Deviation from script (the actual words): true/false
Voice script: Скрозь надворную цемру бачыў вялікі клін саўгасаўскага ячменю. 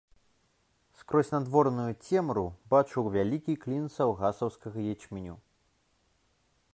false